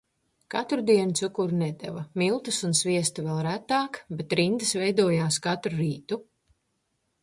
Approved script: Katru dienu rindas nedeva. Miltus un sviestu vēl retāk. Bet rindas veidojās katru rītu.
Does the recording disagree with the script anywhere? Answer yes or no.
yes